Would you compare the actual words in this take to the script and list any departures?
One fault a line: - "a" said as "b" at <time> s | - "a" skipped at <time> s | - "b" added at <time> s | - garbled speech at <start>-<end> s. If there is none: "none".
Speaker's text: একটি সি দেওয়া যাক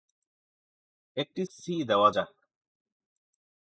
none